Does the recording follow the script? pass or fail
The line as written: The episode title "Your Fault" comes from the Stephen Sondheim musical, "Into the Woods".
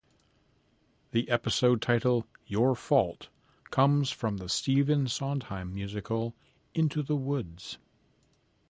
pass